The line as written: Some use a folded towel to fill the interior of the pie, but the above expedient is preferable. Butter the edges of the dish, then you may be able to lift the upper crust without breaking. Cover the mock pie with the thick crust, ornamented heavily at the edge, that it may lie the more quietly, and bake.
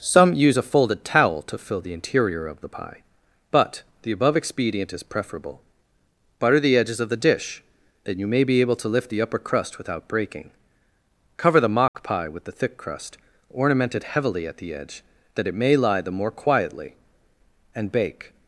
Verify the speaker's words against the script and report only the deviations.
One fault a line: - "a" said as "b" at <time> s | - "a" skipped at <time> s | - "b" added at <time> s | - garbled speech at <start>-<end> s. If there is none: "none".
none